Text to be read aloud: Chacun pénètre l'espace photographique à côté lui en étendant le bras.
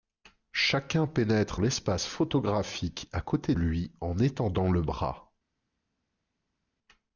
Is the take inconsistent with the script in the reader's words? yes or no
no